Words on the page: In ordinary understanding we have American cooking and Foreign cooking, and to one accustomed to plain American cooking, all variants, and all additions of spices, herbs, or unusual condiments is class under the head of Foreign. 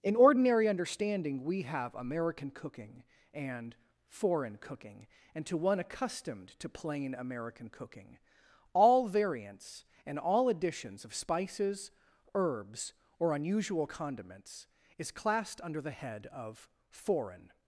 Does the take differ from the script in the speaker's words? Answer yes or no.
yes